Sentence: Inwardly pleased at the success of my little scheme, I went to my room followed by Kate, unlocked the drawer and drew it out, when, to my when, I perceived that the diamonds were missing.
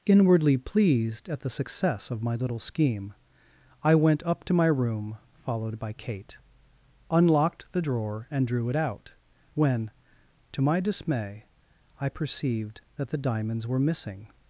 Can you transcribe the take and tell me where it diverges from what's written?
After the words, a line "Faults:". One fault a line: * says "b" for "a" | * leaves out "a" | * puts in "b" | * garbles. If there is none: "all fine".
Inwardly pleased at the success of my little scheme, I went up to my room followed by Kate, unlocked the drawer and drew it out, when, to my dismay, I perceived that the diamonds were missing.
Faults:
* puts in "up"
* says "dismay" for "when"